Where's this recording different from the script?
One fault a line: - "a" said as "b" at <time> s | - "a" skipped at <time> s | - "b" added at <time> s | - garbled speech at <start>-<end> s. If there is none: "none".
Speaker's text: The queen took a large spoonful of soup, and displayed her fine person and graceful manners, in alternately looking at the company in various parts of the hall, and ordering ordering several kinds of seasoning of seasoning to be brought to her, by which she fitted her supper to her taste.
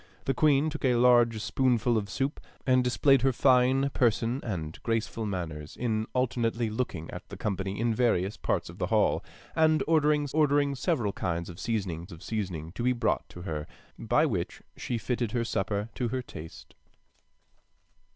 none